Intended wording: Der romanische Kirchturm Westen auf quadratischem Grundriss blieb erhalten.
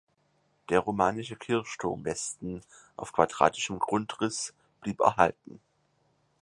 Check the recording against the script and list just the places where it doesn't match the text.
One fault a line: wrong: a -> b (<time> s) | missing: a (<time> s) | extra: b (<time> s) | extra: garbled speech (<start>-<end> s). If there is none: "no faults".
no faults